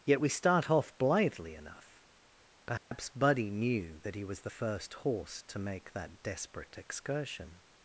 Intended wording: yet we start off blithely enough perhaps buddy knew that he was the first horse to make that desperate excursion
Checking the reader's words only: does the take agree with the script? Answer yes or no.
yes